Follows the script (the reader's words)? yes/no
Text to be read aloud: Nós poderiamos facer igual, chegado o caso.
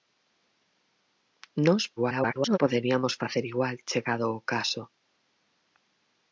no